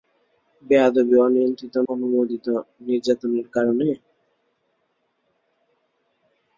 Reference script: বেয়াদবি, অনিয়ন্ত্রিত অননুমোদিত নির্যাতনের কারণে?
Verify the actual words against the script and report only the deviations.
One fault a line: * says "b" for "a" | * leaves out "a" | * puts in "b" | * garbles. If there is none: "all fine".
all fine